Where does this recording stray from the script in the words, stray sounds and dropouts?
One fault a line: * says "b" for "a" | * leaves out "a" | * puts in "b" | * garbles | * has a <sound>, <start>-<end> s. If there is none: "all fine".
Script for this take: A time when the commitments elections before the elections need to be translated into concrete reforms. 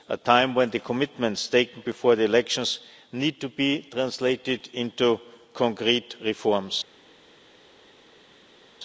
* says "taken" for "elections"